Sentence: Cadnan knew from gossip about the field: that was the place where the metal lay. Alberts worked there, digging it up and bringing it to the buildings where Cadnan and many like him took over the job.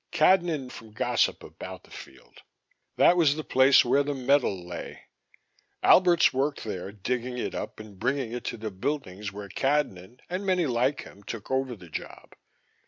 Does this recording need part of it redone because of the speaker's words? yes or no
yes